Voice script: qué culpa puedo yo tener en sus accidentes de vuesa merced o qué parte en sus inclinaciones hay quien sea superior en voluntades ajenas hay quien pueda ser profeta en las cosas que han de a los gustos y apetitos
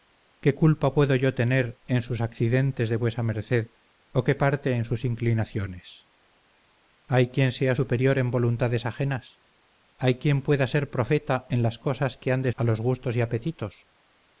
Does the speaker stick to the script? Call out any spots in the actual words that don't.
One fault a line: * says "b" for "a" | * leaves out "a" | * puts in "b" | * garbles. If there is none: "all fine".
all fine